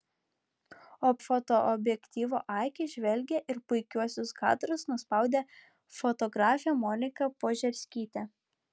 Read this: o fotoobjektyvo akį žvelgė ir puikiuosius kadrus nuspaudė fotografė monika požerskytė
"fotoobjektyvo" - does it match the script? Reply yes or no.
yes